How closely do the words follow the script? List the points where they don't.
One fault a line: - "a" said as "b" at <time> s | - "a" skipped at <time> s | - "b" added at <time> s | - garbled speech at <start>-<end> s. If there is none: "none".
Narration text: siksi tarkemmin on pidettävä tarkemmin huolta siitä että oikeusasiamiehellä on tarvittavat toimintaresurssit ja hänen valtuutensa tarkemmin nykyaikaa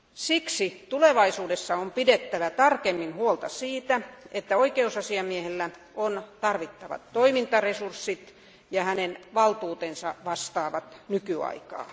- "tarkemmin" said as "tulevaisuudessa" at 0.9 s
- "tarkemmin" said as "vastaavat" at 10.3 s